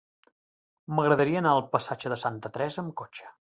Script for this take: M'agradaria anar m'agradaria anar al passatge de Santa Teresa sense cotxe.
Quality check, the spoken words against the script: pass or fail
fail